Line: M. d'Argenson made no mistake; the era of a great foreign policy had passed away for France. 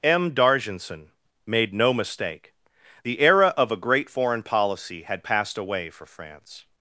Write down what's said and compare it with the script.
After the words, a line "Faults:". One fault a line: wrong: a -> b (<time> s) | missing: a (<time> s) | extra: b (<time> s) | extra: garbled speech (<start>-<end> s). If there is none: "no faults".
M. d'Argenson made no mistake; the era of a great foreign policy had passed away for France.
Faults:
no faults